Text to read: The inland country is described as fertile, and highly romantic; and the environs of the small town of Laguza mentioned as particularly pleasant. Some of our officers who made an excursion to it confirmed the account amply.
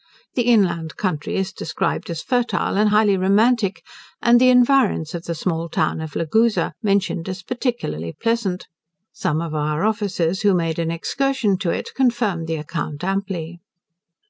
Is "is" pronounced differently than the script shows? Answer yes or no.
no